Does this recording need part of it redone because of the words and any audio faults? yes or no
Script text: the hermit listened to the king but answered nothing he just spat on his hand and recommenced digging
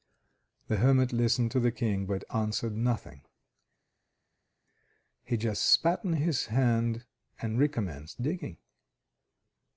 no